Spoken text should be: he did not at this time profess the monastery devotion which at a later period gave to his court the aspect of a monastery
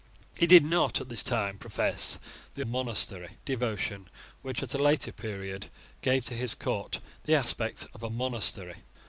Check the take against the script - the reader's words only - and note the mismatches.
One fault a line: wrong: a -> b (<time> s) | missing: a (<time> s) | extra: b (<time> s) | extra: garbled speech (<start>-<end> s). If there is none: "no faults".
no faults